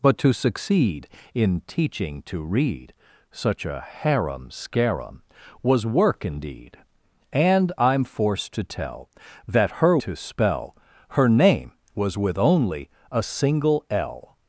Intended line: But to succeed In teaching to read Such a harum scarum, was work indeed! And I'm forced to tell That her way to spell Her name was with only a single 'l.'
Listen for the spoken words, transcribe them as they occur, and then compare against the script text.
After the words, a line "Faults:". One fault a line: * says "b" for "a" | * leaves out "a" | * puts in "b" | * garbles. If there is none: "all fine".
But to succeed In teaching to read Such a harum scarum, was work indeed! And I'm forced to tell That her to spell Her name was with only a single 'l.'
Faults:
* leaves out "way"